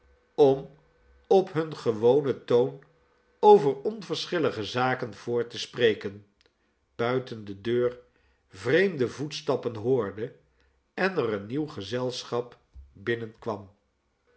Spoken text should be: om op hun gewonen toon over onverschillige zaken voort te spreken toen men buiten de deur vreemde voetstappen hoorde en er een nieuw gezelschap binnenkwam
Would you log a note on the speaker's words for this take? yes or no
yes